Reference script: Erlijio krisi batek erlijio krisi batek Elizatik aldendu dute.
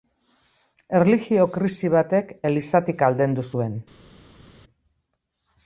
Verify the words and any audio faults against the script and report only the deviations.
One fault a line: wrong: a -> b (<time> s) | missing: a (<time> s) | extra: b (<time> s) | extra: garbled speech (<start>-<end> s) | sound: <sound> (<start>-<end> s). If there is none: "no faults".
missing: erlijio krisi batek (2.3 s)
wrong: dute -> zuen (3.5 s)